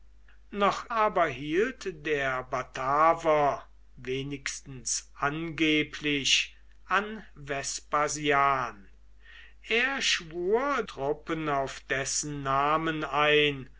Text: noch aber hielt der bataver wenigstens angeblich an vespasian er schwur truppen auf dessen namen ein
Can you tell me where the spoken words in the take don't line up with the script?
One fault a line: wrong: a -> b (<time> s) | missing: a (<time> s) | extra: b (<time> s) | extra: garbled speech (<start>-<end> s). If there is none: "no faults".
no faults